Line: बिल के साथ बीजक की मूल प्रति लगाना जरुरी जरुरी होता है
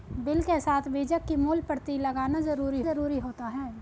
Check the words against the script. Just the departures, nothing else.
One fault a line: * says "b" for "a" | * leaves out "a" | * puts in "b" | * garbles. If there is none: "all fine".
all fine